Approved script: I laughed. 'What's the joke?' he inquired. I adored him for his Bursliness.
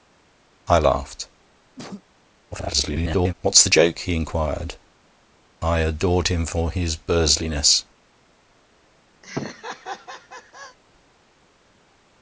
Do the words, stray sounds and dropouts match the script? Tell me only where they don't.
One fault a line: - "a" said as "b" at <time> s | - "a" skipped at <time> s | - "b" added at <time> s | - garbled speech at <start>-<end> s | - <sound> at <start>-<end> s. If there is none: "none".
- cough at 1.8-2.0 s
- garbled speech at 2.5-3.3 s
- laugh at 9.2-10.8 s